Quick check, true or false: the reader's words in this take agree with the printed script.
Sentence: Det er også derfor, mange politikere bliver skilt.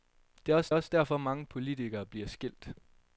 false